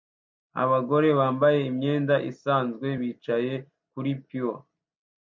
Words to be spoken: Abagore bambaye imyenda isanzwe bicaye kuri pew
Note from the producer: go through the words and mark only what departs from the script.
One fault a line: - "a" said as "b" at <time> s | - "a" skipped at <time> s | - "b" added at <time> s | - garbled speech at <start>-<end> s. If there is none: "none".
none